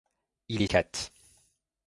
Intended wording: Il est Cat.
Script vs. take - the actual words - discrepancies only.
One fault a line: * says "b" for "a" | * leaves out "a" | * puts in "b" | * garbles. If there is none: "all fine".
all fine